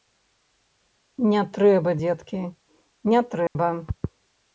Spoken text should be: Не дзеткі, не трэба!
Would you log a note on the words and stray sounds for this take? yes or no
yes